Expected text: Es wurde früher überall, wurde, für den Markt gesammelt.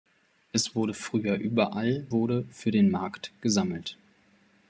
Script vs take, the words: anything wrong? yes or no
no